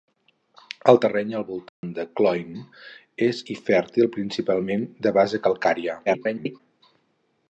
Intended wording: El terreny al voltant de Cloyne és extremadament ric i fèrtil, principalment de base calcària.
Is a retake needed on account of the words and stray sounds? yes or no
yes